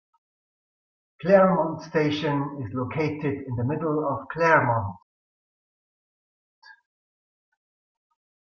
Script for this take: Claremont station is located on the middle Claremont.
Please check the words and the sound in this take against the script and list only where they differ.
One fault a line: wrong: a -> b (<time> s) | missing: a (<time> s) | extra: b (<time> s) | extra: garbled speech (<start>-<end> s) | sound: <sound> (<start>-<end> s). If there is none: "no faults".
wrong: on -> in (3.5 s)
extra: of (4.1 s)